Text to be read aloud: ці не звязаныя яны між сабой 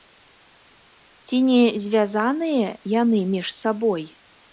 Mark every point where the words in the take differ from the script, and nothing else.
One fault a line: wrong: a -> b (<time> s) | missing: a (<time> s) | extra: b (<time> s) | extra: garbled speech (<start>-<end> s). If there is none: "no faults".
no faults